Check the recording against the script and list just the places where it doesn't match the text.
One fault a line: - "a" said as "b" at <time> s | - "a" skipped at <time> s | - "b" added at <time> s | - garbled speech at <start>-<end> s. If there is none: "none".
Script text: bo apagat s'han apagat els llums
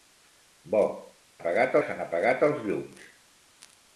none